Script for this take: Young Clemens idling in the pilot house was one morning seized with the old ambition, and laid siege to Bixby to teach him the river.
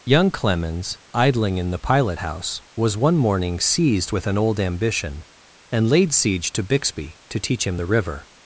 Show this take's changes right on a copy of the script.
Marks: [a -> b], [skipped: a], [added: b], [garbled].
Young Clemens idling in the pilot house was one morning seized with [the -> an] old ambition, and laid siege to Bixby to teach him the river.